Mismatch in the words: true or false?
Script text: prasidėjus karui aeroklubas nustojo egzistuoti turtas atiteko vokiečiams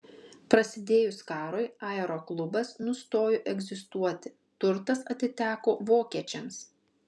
false